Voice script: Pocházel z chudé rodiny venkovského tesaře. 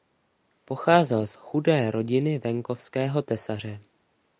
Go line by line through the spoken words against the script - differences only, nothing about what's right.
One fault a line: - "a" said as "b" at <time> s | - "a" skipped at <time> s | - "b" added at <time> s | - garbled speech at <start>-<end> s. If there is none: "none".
none